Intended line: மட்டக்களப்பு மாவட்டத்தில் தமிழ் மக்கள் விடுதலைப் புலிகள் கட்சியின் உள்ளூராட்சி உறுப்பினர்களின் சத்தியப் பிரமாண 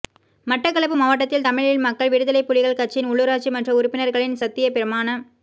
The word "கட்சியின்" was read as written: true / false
true